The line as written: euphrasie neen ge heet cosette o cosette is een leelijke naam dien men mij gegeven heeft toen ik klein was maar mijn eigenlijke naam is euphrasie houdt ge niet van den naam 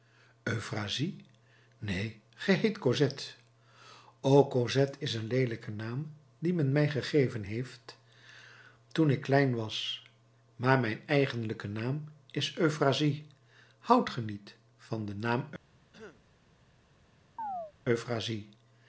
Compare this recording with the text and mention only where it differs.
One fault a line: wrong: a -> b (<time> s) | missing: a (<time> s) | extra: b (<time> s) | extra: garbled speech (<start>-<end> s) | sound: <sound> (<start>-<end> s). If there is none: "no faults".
sound: throat clearing (15.9-16.2 s)
sound: chirp (17.4-17.7 s)